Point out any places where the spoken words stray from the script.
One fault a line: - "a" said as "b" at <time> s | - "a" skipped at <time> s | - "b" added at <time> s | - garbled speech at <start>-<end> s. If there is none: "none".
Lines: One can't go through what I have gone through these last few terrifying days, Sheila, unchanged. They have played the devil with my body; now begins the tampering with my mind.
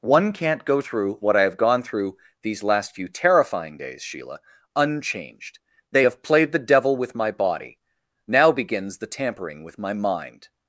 none